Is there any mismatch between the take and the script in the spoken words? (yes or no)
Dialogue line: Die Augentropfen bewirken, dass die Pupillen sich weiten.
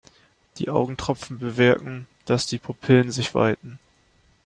no